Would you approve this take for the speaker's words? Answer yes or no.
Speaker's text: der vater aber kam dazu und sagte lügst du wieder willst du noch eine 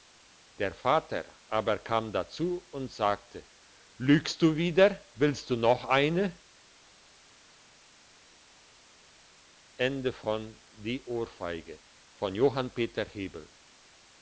yes